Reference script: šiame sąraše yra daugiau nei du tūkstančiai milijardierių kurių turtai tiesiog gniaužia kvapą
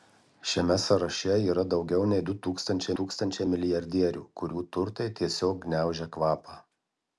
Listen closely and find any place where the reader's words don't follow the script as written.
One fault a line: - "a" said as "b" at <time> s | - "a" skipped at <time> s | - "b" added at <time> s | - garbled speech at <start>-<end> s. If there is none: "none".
- "tūkstančiai" added at 3.0 s